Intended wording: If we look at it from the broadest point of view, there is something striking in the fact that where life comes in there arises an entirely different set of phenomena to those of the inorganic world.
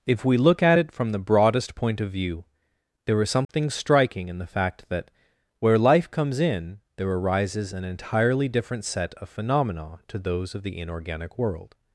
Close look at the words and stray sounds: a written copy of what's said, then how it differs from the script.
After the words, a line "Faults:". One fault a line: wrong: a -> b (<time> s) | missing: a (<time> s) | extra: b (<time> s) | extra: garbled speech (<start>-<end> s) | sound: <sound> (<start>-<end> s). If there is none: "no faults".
If we look at it from the broadest point of view, there is something striking in the fact that where life comes in there arises an entirely different set of phenomena to those of the inorganic world.
Faults:
sound: dropout (3.4-3.5 s)